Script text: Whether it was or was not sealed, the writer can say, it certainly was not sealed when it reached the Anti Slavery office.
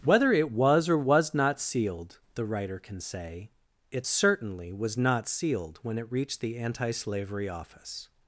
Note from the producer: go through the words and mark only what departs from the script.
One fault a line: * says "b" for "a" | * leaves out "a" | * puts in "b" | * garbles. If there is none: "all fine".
all fine